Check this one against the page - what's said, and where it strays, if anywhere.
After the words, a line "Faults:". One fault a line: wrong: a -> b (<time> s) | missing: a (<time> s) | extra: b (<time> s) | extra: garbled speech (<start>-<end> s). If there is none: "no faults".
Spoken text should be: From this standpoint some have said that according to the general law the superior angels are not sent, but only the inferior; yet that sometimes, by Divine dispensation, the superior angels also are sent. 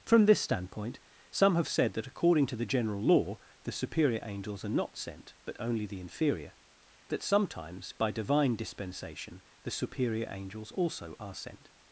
From this standpoint some have said that according to the general law the superior angels are not sent, but only the inferior; that sometimes, by Divine dispensation, the superior angels also are sent.
Faults:
missing: yet (6.5 s)